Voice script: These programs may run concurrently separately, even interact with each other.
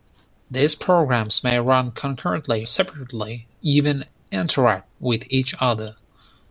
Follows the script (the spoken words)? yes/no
yes